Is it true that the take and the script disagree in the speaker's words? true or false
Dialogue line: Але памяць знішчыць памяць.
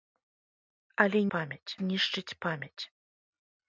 false